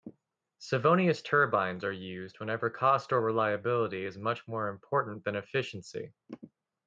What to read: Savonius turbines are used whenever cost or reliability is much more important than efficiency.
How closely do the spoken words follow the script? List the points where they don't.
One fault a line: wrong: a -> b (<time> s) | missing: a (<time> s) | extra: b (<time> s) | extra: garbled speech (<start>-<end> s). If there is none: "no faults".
no faults